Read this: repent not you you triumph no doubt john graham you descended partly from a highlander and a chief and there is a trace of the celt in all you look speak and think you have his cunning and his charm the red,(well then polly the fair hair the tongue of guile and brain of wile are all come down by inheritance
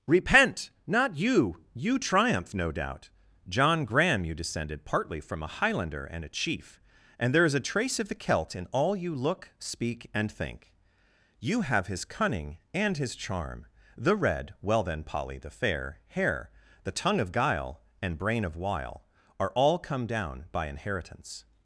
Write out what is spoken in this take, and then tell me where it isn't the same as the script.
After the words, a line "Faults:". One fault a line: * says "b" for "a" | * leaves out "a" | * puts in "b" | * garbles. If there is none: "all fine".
repent not you you triumph no doubt john graham you descended partly from a highlander and a chief and there is a trace of the celt in all you look speak and think you have his cunning and his charm the red,(well then polly the fair hair the tongue of guile and brain of wile are all come down by inheritance
Faults:
all fine